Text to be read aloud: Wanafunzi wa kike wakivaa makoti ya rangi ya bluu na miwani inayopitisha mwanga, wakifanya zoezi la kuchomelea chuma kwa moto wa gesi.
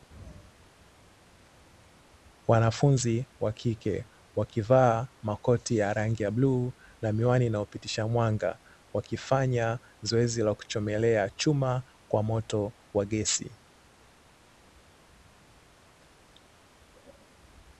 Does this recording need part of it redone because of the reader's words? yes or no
no